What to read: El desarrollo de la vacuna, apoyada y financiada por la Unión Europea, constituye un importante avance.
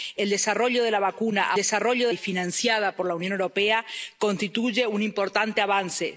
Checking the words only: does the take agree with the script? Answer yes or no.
no